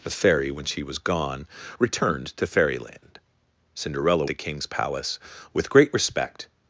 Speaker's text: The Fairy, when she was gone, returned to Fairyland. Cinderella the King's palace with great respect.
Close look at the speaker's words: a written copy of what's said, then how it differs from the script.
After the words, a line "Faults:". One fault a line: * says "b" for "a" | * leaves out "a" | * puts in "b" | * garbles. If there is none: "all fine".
The Fairy, when she was gone, returned to Fairyland. Cinderella the King's palace with great respect.
Faults:
all fine